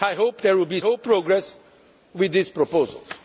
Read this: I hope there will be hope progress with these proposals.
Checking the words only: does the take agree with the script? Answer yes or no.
yes